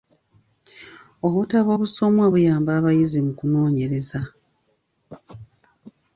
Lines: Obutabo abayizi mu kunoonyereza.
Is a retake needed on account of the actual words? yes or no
yes